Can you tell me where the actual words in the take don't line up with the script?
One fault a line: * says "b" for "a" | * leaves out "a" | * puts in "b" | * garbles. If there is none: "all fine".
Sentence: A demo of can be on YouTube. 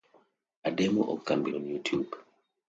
all fine